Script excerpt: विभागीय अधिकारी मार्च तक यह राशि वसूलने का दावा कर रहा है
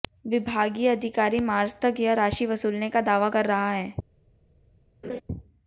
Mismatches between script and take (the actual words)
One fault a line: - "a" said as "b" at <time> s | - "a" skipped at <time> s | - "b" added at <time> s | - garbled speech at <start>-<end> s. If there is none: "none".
none